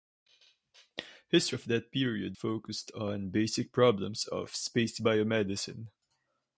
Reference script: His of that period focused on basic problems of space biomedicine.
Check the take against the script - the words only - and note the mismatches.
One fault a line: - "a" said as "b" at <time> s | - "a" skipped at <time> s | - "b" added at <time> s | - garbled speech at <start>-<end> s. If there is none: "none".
none